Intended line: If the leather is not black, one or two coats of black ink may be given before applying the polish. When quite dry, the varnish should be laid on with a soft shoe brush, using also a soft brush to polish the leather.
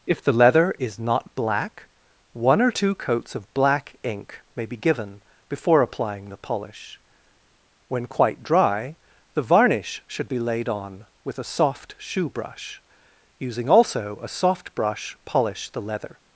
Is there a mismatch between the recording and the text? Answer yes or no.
yes